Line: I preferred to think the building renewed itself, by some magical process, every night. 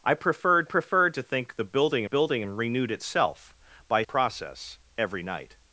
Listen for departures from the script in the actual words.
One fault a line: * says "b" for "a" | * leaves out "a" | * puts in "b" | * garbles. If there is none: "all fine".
* puts in "preferred"
* puts in "building"
* leaves out "some magical"